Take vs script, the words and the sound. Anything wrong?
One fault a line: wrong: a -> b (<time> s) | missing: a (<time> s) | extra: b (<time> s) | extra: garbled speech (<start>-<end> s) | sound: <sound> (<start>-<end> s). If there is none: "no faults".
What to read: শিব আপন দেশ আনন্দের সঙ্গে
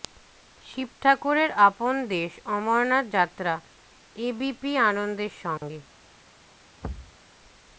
extra: ঠাকুরের (1.0 s)
extra: অমরনাথ যাত্রা এবিপি (2.5 s)
sound: dropout (5.6-5.6 s)
sound: thud (6.8-7.2 s)